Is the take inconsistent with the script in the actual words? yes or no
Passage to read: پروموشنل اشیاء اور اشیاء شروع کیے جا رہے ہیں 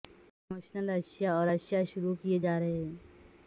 no